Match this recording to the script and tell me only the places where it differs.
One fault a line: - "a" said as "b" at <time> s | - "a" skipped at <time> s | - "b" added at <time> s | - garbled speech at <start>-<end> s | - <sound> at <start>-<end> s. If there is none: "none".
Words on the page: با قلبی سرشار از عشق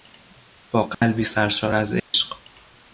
- dropout at 0.9-1.0 s
- dropout at 2.0-2.1 s